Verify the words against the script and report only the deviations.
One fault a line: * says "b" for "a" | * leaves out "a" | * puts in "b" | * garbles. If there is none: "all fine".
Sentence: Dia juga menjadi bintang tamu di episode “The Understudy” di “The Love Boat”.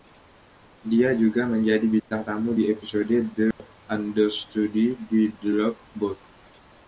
all fine